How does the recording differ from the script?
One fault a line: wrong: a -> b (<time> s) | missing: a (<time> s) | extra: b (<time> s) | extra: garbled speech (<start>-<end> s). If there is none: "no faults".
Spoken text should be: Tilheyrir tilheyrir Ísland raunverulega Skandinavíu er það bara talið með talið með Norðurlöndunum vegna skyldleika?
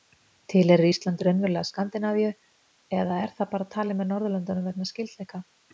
missing: tilheyrir (0.9 s)
extra: eða (3.0 s)
missing: talið með (4.1 s)